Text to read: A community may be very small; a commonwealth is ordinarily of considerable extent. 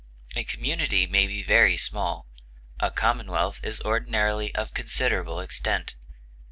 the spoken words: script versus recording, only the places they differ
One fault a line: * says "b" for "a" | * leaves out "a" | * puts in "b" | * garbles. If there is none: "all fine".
all fine